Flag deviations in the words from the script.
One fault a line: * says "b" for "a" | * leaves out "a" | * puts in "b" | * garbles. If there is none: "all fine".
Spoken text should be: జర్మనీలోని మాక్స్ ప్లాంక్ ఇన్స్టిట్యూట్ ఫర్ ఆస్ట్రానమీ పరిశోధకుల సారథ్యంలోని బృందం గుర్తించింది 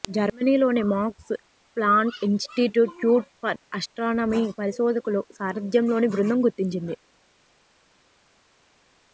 all fine